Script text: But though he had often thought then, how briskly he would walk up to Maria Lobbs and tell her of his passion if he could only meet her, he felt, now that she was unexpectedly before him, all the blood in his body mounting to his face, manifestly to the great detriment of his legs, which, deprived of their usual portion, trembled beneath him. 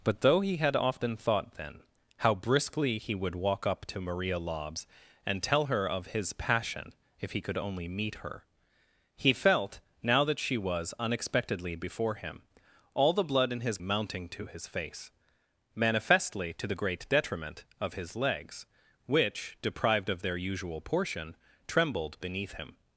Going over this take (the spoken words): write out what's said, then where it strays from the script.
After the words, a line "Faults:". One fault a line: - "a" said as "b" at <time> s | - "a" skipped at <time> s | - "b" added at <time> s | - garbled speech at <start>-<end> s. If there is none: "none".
But though he had often thought then, how briskly he would walk up to Maria Lobbs and tell her of his passion if he could only meet her, he felt, now that she was unexpectedly before him, all the blood in his mounting to his face, manifestly to the great detriment of his legs, which, deprived of their usual portion, trembled beneath him.
Faults:
- "body" skipped at 13.8 s